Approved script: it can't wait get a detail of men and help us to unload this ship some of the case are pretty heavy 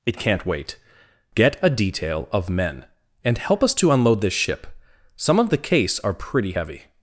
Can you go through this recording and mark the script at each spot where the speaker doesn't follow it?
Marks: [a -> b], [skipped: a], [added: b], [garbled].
it can't wait get a detail of men and help us to unload this ship some of the case are pretty heavy